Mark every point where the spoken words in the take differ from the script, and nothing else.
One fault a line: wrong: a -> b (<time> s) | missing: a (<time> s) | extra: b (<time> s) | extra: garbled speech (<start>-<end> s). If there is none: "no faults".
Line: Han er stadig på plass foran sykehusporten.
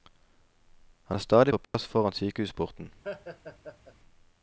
no faults